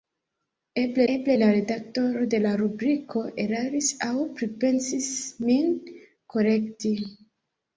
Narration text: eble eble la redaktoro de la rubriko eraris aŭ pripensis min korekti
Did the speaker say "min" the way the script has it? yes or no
yes